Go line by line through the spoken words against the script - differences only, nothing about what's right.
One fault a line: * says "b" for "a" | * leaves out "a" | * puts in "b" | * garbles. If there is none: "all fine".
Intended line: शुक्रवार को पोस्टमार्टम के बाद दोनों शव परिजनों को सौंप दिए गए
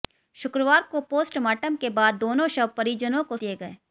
* leaves out "सौंप"